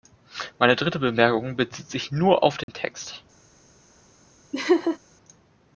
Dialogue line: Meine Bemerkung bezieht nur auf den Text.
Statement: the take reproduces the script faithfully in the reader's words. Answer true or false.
false